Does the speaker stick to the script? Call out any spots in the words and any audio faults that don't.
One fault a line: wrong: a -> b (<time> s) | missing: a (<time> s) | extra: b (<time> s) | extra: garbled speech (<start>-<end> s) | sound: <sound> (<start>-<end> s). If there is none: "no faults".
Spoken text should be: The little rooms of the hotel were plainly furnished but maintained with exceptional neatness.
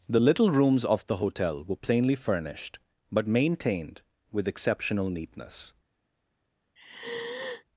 sound: sigh (6.8-7.6 s)